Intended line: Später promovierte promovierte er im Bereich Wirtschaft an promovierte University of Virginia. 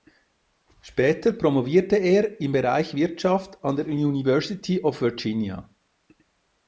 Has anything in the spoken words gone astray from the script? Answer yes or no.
yes